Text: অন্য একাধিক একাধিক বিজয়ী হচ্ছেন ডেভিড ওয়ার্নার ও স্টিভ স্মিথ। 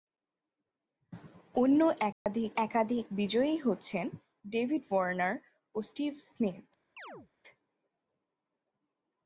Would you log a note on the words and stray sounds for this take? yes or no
yes